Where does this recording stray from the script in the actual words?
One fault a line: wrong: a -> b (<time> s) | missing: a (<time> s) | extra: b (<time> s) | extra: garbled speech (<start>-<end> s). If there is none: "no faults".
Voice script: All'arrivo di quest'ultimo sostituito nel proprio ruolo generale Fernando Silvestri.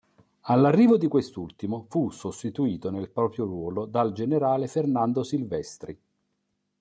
extra: fu (1.9 s)
extra: dal (3.9 s)